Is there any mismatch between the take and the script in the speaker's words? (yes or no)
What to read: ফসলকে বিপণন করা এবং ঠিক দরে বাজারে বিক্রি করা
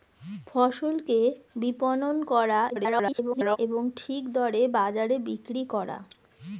yes